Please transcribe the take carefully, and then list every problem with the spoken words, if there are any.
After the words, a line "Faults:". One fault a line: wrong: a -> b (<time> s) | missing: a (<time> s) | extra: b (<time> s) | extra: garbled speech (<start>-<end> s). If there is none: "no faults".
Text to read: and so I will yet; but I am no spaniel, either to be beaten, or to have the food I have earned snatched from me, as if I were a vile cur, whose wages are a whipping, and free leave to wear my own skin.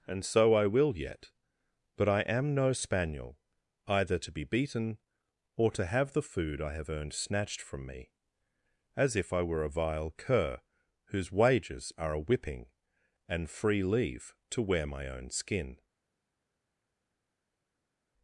and so I will yet; but I am no spaniel, either to be beaten, or to have the food I have earned snatched from me, as if I were a vile cur, whose wages are a whipping, and free leave to wear my own skin.
Faults:
no faults